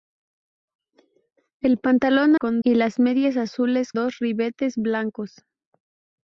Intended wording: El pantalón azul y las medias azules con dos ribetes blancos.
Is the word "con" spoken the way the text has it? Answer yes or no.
no